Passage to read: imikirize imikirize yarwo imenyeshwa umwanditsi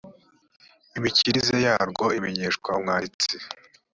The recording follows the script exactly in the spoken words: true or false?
false